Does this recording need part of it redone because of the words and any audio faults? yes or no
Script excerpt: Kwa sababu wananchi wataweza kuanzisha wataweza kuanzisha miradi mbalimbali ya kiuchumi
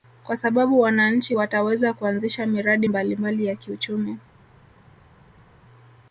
yes